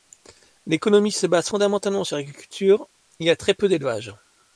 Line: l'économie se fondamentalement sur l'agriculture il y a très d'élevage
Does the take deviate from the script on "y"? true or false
false